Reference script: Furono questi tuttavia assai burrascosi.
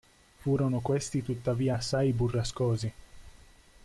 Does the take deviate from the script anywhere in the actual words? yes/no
no